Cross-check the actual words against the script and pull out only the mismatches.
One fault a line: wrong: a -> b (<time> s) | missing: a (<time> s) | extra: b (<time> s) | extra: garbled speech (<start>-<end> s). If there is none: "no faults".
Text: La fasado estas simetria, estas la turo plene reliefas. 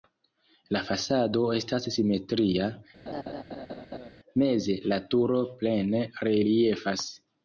wrong: estas -> meze (4.4 s)